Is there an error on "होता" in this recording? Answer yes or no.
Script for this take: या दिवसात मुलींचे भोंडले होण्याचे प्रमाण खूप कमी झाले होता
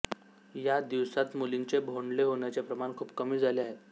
yes